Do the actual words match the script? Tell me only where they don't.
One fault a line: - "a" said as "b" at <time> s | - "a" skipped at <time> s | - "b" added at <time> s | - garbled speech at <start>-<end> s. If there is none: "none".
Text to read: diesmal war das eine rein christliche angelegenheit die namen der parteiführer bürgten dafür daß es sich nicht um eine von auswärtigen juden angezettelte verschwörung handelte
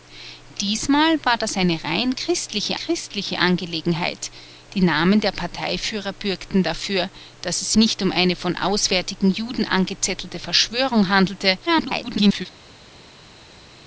- "christliche" added at 2.7 s
- "sich" skipped at 7.7 s
- garbled speech at 11.7-12.5 s